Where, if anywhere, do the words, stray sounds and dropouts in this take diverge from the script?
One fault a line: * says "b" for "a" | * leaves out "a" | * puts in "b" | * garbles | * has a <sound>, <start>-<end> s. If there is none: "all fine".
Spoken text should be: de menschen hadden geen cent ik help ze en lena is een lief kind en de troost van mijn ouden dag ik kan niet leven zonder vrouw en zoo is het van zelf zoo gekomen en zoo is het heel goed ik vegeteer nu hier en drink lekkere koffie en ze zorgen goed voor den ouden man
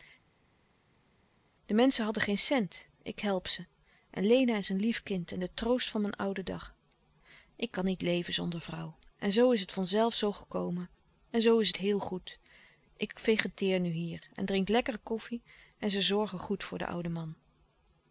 all fine